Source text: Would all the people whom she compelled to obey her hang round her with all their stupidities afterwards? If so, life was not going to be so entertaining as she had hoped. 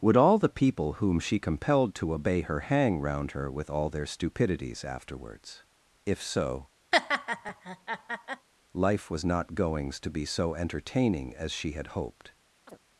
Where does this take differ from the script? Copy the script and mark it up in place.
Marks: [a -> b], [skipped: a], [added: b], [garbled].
Would all the people whom she compelled to obey her hang round her with all their stupidities afterwards? If so, life was not [going -> goings] to be so entertaining as she had hoped.